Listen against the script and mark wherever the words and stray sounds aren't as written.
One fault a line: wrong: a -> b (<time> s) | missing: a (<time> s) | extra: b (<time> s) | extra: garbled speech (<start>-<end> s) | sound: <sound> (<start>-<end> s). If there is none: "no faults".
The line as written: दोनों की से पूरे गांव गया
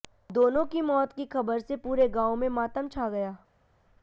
extra: मौत की खबर (0.8 s)
extra: में मातम छा (2.4 s)